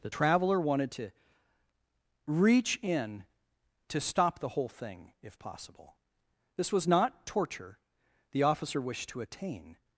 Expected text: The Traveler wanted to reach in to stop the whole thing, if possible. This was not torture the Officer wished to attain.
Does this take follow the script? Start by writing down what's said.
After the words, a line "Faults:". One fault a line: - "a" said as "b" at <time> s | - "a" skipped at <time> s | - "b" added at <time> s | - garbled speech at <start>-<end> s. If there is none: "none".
The Traveler wanted to reach in to stop the whole thing, if possible. This was not torture the Officer wished to attain.
Faults:
none